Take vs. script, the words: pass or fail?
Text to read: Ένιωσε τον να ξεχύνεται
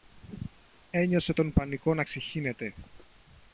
fail